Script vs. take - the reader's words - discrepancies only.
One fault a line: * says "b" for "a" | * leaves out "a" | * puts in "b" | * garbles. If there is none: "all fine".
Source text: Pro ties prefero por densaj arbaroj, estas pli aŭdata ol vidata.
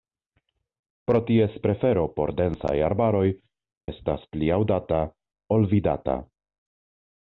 all fine